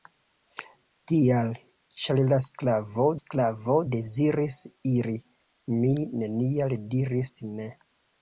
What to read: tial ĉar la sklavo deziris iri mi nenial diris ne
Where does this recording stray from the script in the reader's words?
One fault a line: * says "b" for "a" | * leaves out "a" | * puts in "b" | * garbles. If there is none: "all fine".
* puts in "sklavo"